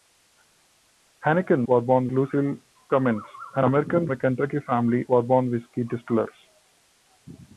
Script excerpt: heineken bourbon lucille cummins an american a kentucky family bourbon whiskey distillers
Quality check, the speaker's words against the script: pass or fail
pass